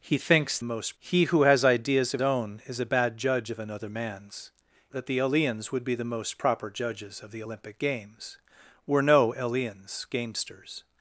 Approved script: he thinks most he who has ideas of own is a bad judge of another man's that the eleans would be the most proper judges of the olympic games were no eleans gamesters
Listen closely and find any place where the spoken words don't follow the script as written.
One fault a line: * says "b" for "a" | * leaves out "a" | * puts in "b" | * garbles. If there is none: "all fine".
all fine